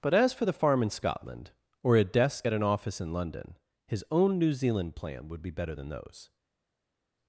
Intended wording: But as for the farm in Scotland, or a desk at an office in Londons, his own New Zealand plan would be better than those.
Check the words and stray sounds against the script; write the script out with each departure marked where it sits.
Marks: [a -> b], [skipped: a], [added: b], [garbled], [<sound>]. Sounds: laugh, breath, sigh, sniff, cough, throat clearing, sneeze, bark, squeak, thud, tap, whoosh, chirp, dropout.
But as for the farm in Scotland, or a desk at an office in [Londons, -> London] his own New Zealand plan would be better than those.